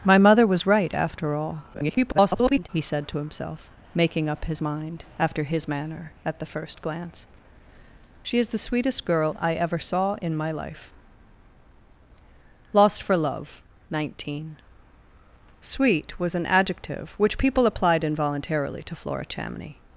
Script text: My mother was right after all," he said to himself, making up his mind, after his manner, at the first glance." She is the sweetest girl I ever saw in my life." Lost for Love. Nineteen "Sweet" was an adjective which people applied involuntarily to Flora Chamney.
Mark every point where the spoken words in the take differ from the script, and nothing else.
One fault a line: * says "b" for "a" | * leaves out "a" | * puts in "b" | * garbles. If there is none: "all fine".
* garbles